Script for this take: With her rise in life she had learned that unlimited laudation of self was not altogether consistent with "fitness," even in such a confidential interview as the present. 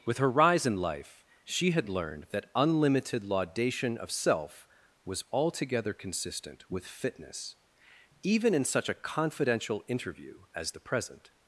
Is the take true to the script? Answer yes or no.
no